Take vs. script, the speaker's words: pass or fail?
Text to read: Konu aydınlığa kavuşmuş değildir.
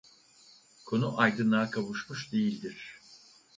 pass